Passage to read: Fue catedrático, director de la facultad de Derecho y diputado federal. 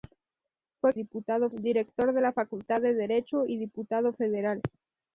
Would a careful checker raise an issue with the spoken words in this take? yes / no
yes